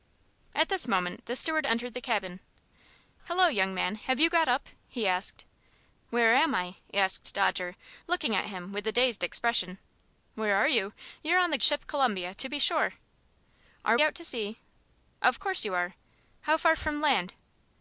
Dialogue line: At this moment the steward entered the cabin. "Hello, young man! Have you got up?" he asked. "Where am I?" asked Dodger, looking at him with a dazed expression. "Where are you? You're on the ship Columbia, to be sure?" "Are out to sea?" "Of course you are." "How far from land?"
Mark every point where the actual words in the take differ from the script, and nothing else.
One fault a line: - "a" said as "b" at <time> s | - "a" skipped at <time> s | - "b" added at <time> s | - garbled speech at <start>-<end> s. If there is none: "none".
none